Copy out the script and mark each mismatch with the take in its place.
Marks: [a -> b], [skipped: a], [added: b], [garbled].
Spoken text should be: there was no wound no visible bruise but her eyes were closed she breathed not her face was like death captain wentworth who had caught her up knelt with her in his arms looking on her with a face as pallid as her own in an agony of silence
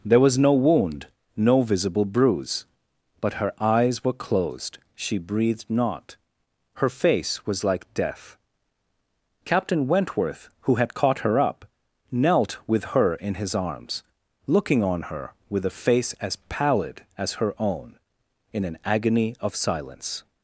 there was no wound no visible bruise but her eyes were closed she breathed not her face was like death captain wentworth who had caught her up knelt with her in his arms looking on her with a face as pallid as her own in an agony of silence